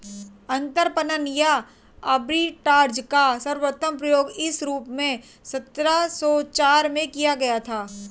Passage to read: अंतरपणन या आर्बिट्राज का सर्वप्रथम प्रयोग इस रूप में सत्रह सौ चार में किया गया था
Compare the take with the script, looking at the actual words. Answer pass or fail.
pass